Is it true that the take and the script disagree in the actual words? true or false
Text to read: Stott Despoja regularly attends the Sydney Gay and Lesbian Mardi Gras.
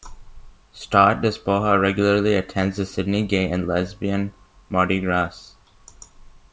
false